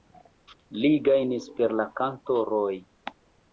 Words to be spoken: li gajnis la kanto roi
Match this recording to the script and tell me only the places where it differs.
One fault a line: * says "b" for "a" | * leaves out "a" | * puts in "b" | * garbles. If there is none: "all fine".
* puts in "per"